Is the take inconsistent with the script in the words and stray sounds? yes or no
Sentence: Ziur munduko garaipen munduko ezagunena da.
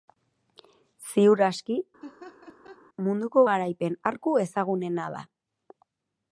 yes